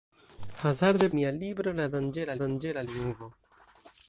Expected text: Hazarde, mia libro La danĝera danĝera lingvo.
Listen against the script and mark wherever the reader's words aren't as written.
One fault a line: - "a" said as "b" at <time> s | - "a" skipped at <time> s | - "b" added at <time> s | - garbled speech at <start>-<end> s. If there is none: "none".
none